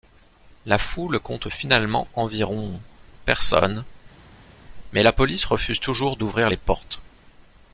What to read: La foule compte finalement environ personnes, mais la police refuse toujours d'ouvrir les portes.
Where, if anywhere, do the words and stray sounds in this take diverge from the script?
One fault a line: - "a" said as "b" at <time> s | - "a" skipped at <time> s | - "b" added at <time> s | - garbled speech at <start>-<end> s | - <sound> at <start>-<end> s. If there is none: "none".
none